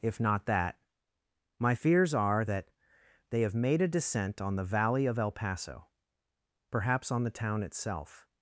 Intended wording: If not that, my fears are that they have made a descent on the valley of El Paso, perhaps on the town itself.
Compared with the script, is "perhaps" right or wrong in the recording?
right